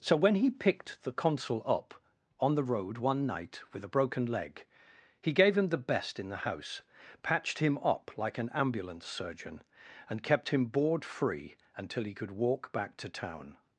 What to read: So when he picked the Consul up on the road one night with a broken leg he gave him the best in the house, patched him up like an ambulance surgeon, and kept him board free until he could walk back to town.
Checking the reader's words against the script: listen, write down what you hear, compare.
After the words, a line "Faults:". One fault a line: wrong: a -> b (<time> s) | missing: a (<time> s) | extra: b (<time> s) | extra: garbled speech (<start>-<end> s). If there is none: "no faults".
So when he picked the Consul up on the road one night with a broken leg he gave him the best in the house, patched him up like an ambulance surgeon, and kept him board free until he could walk back to town.
Faults:
no faults